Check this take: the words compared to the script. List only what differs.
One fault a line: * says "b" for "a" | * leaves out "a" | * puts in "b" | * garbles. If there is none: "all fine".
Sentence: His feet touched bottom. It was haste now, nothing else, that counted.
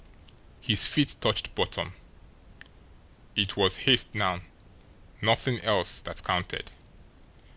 all fine